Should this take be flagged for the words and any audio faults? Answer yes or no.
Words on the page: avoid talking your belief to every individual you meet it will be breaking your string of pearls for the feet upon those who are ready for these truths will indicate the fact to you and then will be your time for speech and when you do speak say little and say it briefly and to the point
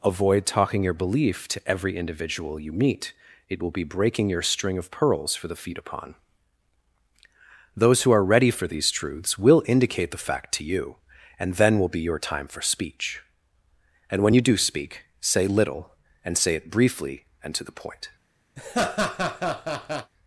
yes